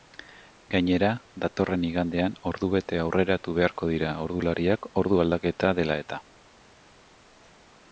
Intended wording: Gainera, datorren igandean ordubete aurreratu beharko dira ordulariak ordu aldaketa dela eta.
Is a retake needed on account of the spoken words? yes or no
no